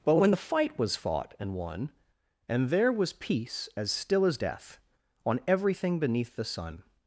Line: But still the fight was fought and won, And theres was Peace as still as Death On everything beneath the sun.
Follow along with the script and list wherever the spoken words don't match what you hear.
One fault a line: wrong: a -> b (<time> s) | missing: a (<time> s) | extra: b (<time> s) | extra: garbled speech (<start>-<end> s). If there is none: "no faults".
wrong: still -> when (0.1 s)
wrong: theres -> there (2.7 s)